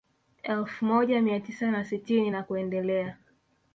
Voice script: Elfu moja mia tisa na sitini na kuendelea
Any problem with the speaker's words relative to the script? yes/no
no